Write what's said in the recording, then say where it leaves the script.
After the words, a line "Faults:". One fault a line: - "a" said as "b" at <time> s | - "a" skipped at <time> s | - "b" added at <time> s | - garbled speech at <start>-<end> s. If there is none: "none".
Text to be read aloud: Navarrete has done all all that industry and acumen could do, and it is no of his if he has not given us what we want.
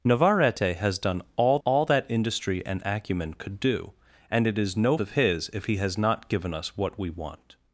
Navarrete has done all all that industry and acumen could do, and it is no of his if he has not given us what we want.
Faults:
none